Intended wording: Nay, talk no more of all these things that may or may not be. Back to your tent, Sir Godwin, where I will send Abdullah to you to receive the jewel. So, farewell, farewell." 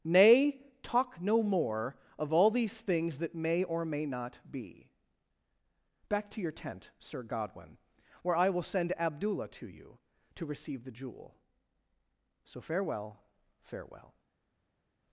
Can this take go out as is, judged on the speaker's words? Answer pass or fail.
pass